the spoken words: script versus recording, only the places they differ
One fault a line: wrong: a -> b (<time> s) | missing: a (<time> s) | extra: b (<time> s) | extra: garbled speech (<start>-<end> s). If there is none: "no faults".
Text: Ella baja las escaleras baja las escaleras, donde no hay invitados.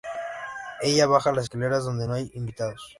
missing: baja las escaleras (1.8 s)